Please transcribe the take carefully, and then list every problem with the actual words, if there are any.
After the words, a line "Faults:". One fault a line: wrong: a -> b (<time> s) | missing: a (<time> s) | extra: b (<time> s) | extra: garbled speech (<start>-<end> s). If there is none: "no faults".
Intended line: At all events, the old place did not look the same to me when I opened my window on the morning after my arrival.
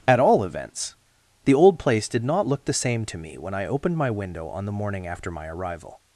At all events, the old place did not look the same to me when I opened my window on the morning after my arrival.
Faults:
no faults